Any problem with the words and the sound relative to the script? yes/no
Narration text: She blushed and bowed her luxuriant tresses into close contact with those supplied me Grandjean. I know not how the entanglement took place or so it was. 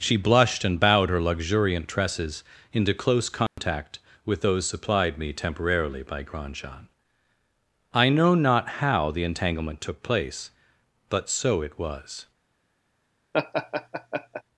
yes